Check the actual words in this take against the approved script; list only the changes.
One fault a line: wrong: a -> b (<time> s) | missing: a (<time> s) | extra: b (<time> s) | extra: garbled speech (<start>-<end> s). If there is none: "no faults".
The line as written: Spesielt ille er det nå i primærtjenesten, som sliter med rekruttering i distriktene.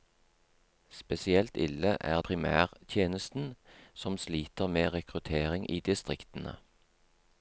missing: det nå i (2.2 s)